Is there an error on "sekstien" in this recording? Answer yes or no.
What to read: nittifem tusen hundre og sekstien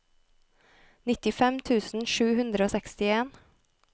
no